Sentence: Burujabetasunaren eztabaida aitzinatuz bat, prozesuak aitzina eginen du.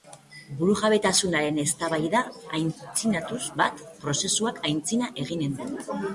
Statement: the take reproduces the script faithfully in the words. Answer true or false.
true